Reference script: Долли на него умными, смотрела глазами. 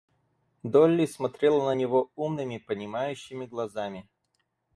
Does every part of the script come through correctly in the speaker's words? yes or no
no